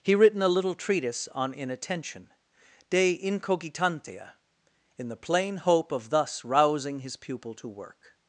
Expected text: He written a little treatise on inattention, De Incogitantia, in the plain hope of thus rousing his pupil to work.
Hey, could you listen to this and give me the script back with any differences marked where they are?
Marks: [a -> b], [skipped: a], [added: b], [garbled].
He written a little treatise on inattention, De Incogitantia, in the plain hope of thus rousing his pupil to work.